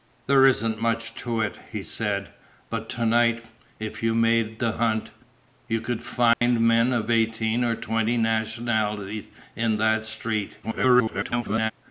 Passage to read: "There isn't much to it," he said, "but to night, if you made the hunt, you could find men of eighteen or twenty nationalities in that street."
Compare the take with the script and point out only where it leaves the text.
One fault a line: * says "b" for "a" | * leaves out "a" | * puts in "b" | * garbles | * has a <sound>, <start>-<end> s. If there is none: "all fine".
* has a dropout, 6.3-6.4 s
* garbles